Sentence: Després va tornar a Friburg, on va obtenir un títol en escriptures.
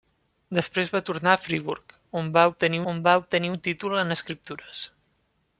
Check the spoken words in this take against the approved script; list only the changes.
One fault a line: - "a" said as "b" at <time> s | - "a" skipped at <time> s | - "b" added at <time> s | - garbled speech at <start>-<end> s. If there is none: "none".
- "on va obtenir" added at 2.9 s